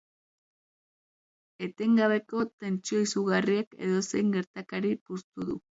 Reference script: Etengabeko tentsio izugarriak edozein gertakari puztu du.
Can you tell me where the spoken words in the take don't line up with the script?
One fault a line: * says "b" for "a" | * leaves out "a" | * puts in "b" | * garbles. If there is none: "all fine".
all fine